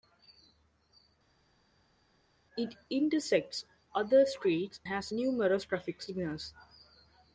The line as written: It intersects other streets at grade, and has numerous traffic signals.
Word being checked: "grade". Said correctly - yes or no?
no